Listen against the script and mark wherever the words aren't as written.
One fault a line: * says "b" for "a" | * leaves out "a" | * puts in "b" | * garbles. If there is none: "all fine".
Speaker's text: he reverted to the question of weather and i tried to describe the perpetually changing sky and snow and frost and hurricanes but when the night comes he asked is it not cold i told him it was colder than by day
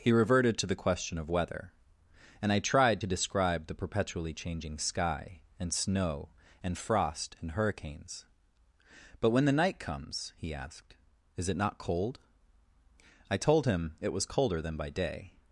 all fine